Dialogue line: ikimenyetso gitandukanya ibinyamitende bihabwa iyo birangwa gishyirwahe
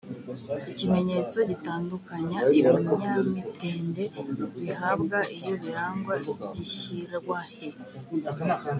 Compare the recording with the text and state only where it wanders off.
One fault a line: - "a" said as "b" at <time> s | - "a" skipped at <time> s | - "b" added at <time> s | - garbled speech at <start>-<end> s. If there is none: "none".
none